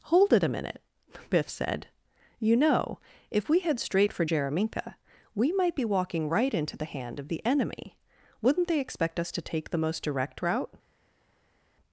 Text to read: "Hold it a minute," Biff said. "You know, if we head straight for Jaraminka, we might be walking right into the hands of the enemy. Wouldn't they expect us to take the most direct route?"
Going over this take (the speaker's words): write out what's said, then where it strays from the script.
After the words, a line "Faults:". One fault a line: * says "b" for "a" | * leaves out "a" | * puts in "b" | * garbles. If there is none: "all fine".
"Hold it a minute," Biff said. "You know, if we head straight for Jaraminka, we might be walking right into the hand of the enemy. Wouldn't they expect us to take the most direct route?"
Faults:
* says "hand" for "hands"